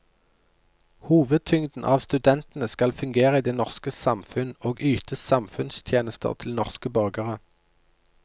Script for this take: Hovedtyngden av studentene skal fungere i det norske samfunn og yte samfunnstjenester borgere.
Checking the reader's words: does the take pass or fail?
fail